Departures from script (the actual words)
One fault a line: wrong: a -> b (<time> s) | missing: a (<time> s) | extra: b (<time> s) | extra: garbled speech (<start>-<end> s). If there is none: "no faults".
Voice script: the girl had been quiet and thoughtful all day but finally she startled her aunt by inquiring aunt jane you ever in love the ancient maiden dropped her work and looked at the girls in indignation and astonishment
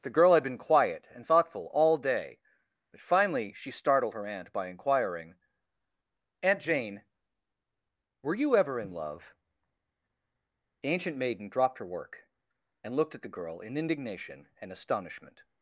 extra: were (8.2 s)
wrong: girls -> girl (13.4 s)